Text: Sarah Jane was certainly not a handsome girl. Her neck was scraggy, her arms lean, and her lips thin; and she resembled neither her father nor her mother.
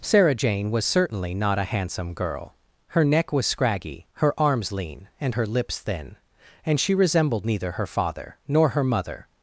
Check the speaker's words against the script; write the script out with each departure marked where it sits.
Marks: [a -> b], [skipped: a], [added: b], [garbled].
Sarah Jane was certainly not a handsome girl. Her neck was scraggy, her arms lean, and her lips thin; and she resembled neither her father nor her mother.